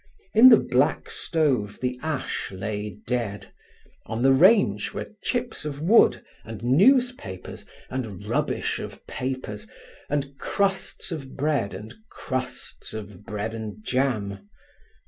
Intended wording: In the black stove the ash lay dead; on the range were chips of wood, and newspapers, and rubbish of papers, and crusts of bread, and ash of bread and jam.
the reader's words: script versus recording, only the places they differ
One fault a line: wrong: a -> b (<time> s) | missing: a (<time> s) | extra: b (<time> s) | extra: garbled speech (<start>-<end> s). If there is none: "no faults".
wrong: ash -> crusts (12.1 s)